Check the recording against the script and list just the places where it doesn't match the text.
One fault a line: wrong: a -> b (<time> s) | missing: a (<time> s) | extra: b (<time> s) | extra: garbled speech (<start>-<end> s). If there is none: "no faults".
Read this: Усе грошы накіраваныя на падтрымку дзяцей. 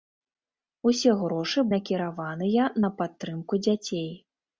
no faults